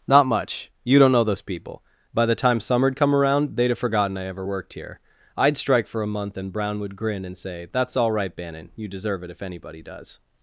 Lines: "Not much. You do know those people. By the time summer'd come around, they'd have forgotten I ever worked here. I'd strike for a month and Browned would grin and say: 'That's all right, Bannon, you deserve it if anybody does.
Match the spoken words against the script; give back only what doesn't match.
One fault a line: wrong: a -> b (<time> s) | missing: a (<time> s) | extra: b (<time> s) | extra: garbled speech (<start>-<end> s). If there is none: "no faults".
wrong: do -> don't (1.0 s)
wrong: Browned -> Brown (6.5 s)